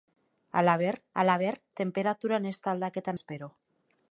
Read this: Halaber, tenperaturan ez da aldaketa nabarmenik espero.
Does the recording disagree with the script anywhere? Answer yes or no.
yes